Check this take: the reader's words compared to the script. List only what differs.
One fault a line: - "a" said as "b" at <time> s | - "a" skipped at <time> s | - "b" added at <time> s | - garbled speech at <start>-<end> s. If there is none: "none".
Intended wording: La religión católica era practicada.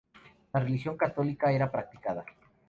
none